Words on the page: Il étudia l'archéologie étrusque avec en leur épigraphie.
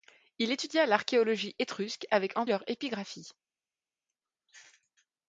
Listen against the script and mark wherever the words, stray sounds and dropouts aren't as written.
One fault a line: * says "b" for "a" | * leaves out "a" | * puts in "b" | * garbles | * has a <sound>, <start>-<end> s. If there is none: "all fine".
all fine